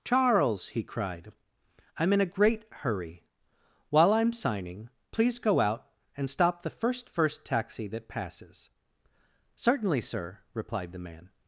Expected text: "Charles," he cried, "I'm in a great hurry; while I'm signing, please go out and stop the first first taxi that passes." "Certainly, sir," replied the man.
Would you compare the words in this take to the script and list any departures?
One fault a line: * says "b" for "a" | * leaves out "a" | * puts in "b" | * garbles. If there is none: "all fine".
all fine